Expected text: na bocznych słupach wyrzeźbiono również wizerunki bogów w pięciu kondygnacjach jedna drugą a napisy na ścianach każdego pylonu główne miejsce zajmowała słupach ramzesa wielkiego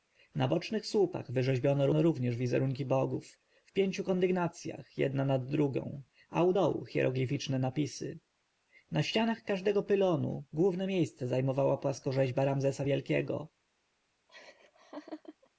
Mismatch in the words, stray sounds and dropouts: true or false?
true